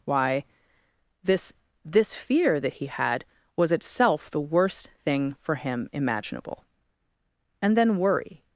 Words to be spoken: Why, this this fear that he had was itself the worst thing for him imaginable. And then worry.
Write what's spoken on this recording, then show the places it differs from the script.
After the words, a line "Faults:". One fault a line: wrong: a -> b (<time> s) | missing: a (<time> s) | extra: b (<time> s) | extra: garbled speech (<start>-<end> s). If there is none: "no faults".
Why, this this fear that he had was itself the worst thing for him imaginable. And then worry.
Faults:
no faults